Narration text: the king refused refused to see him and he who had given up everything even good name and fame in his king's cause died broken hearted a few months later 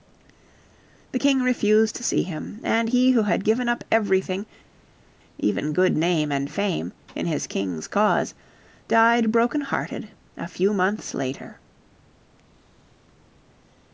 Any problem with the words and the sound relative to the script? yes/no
yes